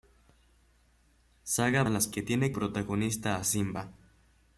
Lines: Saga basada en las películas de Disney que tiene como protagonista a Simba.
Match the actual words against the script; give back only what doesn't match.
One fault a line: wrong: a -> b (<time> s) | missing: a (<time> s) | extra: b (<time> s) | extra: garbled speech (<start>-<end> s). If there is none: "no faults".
missing: basada (1.8 s)
missing: películas de Disney (2.1 s)
missing: como (2.5 s)